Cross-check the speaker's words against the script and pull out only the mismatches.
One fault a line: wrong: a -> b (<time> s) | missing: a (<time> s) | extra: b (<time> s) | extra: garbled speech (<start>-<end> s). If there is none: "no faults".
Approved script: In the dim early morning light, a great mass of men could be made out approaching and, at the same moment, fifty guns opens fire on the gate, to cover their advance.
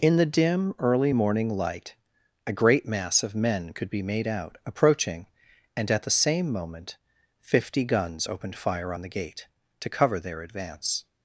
wrong: opens -> opened (8.2 s)